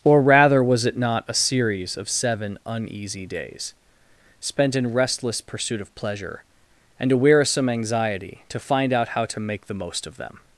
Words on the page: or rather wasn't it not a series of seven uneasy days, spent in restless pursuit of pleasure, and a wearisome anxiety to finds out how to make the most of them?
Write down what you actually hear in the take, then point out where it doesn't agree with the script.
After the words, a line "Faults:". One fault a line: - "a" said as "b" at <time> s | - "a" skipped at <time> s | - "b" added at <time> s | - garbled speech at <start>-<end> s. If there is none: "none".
or rather was it not a series of seven uneasy days, spent in restless pursuit of pleasure, and a wearisome anxiety to find out how to make the most of them?
Faults:
- "wasn't" said as "was" at 0.6 s
- "finds" said as "find" at 8.6 s